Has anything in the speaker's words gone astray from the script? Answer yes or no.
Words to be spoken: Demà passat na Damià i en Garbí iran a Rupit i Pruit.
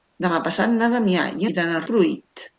yes